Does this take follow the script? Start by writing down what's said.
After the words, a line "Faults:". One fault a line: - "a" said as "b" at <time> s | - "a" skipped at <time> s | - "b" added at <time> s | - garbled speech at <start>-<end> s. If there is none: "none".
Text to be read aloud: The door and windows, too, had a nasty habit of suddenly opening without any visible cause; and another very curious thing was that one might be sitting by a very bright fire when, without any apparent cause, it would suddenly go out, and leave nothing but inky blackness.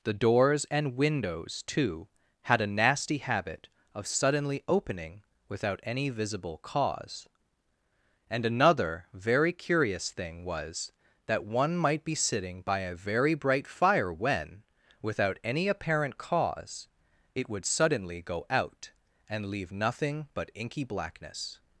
The doors and windows, too, had a nasty habit of suddenly opening without any visible cause; and another very curious thing was that one might be sitting by a very bright fire when, without any apparent cause, it would suddenly go out, and leave nothing but inky blackness.
Faults:
- "door" said as "doors" at 0.1 s